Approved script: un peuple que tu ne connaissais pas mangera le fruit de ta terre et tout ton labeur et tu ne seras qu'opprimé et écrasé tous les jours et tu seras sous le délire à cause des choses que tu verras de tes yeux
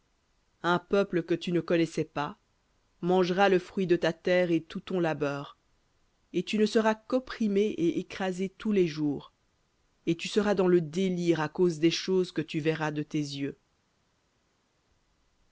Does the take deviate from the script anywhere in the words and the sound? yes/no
yes